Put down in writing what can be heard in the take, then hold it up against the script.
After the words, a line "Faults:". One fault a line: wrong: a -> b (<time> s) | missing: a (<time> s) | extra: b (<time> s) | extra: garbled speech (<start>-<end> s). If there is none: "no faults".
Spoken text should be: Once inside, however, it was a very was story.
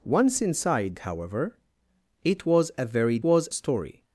Once inside, however, it was a very was story.
Faults:
no faults